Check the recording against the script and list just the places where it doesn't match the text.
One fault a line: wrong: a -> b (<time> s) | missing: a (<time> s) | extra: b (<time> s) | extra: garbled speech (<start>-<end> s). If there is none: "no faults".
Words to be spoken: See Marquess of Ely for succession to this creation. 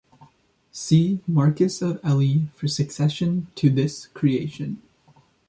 no faults